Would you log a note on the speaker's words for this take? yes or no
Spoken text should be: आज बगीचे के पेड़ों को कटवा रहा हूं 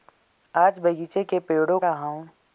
yes